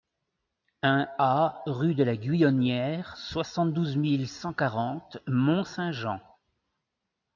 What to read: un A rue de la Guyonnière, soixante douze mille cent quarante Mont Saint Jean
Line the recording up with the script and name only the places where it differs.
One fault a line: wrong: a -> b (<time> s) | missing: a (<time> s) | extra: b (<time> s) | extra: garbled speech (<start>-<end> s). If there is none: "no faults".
no faults